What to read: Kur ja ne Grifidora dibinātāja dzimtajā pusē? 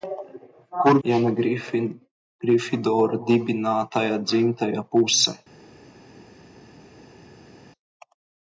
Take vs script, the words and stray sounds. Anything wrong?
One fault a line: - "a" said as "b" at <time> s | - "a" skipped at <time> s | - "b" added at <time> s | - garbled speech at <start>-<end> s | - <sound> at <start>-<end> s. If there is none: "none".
none